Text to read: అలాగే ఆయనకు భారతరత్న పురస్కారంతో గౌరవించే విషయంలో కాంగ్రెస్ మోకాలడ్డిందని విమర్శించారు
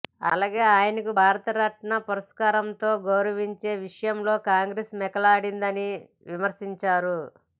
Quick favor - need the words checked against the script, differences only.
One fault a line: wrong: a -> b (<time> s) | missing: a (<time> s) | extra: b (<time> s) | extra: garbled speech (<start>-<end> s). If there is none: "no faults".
no faults